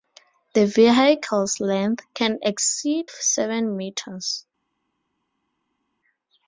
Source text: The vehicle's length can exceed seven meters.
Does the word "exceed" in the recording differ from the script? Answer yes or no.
no